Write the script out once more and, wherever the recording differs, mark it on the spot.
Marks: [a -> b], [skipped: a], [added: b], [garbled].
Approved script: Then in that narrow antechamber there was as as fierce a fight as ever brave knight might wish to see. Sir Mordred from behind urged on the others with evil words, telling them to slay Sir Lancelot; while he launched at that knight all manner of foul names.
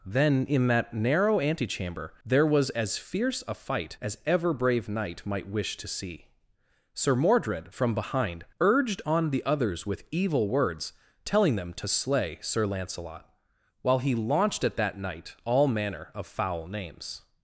Then in that narrow antechamber there was as [skipped: as] fierce a fight as ever brave knight might wish to see. Sir Mordred from behind urged on the others with evil words, telling them to slay Sir Lancelot; while he launched at that knight all manner of foul names.